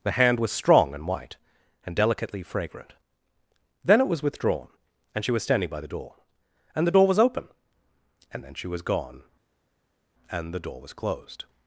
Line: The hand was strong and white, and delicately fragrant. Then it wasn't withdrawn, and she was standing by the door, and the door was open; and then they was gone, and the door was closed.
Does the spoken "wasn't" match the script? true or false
false